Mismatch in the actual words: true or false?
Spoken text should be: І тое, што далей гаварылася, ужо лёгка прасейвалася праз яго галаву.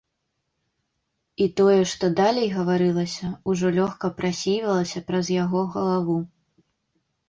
false